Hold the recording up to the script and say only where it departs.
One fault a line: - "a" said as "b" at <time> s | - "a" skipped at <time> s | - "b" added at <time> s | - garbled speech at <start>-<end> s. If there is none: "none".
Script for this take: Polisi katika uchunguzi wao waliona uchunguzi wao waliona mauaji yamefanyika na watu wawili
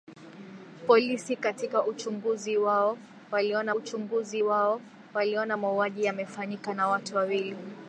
none